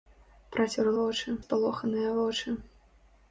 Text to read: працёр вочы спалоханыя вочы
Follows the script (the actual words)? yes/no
yes